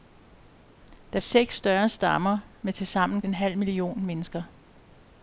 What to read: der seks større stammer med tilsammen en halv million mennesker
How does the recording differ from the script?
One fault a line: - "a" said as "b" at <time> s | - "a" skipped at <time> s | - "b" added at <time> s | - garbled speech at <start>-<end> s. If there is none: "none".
none